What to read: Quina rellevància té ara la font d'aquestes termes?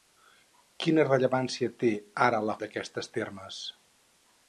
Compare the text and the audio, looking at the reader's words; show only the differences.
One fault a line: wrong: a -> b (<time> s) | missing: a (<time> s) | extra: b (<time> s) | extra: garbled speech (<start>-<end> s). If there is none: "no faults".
missing: font (2.6 s)